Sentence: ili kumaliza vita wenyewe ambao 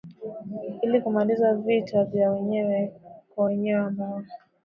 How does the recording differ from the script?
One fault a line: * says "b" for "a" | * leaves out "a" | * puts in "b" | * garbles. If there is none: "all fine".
* puts in "vya wenyewe kwa"